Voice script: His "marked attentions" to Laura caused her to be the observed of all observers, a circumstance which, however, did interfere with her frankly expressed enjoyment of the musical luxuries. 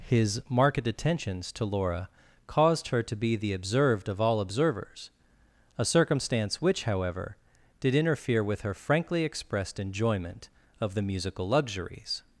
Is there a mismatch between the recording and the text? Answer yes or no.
no